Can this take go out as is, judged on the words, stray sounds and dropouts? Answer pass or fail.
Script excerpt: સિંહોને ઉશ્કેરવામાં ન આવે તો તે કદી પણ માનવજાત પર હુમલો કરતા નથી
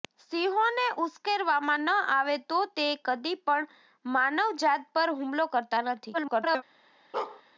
fail